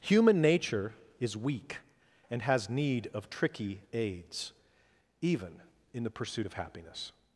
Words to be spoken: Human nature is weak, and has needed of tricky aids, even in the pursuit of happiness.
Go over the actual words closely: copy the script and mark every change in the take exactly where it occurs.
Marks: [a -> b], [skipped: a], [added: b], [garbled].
Human nature is weak, and has [needed -> need] of tricky aids, even in the pursuit of happiness.